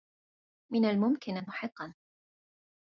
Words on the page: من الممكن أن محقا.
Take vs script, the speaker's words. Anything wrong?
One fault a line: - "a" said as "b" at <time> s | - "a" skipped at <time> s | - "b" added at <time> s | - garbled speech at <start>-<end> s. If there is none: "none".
none